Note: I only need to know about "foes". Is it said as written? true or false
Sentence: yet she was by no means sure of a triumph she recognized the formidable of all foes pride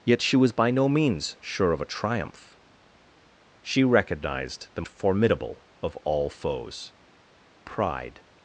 true